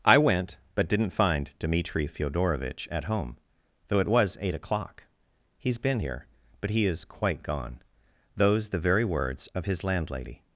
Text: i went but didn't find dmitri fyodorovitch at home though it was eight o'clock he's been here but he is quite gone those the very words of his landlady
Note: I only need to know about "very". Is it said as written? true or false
true